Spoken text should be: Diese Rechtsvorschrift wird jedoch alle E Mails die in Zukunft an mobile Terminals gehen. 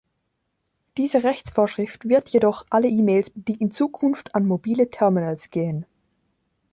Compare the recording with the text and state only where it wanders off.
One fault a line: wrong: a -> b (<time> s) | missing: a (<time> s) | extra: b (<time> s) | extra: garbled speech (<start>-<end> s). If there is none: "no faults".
no faults